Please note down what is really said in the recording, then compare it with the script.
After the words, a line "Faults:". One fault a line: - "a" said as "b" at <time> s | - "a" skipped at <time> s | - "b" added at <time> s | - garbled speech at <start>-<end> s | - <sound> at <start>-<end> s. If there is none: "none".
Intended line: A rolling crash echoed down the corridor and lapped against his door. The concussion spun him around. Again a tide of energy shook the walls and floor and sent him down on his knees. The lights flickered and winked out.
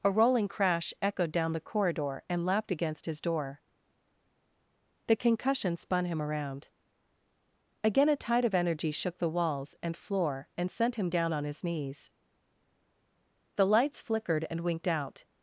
A rolling crash echoed down the corridor and lapped against his door. The concussion spun him around. Again a tide of energy shook the walls and floor and sent him down on his knees. The lights flickered and winked out.
Faults:
none